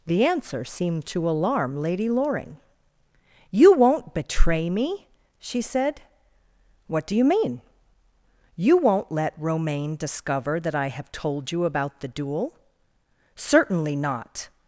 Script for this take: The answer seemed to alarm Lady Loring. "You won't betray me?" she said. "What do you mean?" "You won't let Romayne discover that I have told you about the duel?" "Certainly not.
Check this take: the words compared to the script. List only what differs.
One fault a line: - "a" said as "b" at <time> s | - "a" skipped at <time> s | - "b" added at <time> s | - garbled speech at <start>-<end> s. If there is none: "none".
none